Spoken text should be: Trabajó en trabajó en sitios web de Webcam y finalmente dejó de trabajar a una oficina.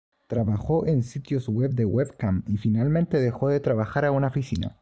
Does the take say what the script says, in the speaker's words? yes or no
no